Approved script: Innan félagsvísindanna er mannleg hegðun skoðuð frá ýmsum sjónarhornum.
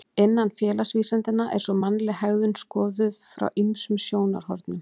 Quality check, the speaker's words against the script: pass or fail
fail